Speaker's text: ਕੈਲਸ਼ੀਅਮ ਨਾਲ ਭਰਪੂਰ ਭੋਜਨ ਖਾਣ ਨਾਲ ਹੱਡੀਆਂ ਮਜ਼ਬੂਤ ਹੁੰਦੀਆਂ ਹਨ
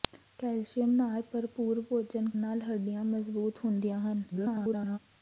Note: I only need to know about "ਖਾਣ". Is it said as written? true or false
false